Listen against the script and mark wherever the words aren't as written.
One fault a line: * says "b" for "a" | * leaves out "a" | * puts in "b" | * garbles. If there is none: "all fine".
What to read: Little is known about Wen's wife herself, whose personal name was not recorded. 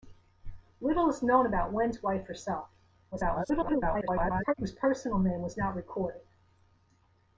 * garbles